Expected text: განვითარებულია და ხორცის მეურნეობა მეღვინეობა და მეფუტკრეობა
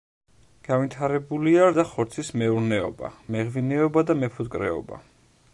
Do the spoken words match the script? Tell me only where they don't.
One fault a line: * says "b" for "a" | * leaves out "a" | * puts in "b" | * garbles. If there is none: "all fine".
all fine